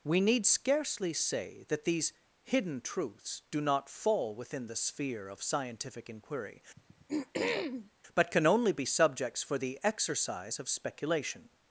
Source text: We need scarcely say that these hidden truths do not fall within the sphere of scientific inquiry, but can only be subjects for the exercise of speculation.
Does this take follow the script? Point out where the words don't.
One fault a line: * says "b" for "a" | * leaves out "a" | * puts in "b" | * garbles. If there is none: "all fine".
all fine